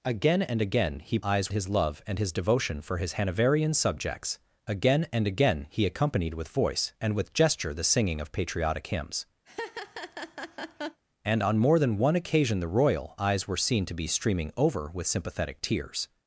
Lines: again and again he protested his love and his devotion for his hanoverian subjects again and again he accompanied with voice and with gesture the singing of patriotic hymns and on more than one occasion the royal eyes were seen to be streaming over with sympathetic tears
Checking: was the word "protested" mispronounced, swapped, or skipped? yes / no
yes